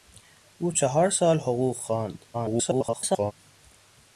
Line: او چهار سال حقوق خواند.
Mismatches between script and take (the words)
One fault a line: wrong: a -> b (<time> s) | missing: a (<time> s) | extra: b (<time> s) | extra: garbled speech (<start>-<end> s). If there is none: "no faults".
extra: garbled speech (2.3-3.3 s)